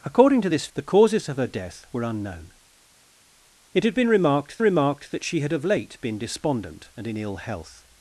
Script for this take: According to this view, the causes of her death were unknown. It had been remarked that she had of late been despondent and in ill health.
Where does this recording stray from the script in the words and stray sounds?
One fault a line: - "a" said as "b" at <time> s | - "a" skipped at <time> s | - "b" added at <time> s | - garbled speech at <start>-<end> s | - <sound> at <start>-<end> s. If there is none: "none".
- "view" skipped at 0.7 s
- "remarked" added at 4.6 s